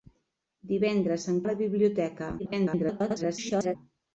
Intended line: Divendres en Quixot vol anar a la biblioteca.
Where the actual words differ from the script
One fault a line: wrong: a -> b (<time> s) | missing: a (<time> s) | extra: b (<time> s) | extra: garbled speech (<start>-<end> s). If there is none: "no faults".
missing: Quixot vol anar (1.4 s)
extra: garbled speech (2.4-3.8 s)